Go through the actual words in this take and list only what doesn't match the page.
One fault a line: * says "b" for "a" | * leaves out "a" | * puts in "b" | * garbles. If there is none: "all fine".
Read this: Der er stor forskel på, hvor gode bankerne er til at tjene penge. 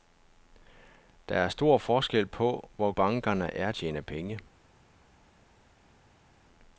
* leaves out "gode"
* leaves out "til at"